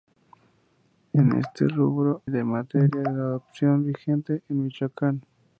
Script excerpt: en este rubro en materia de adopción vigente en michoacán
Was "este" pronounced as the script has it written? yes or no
yes